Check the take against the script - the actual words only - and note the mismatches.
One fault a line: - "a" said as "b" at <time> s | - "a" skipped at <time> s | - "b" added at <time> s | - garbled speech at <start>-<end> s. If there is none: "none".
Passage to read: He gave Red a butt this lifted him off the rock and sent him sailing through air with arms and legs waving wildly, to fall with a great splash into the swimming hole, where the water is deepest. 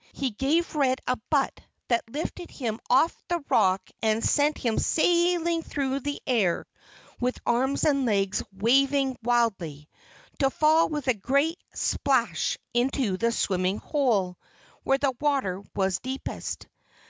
- "this" said as "that" at 1.9 s
- "the" added at 6.0 s
- "is" said as "was" at 15.8 s